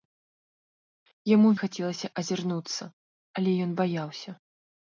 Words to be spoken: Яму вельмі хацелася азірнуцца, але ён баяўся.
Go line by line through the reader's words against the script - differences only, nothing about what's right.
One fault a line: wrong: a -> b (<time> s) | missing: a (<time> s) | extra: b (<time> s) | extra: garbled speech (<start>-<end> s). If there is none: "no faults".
missing: вельмі (1.5 s)